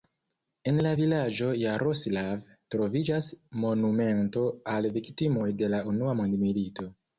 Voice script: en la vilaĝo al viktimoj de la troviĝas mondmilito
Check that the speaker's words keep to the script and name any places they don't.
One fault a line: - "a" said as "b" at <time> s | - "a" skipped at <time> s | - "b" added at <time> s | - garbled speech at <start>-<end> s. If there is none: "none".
- "jaroslav troviĝas monumento" added at 1.6 s
- "troviĝas" said as "unua" at 6.0 s